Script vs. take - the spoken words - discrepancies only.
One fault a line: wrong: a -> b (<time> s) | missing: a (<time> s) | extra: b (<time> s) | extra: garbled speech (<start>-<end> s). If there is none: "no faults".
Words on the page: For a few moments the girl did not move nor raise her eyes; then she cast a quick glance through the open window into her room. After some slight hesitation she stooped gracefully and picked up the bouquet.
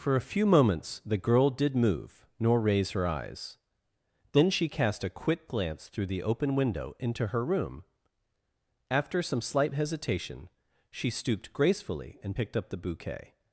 missing: not (1.8 s)